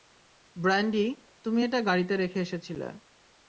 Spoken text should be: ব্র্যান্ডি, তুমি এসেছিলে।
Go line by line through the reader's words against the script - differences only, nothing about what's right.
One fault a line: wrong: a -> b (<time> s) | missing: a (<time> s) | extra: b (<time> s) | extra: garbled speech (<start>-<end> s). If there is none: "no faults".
extra: এটা গাড়িতে রেখে (1.6 s)